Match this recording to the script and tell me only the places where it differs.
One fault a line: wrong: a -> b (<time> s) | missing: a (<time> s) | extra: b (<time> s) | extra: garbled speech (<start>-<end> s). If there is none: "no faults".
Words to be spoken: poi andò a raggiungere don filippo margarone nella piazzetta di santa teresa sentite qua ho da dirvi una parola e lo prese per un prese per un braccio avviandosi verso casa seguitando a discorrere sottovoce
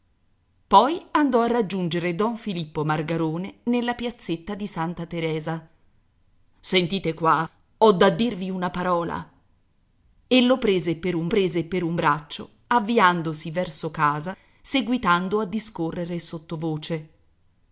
no faults